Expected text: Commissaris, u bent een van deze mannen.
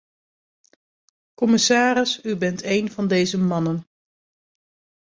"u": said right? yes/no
yes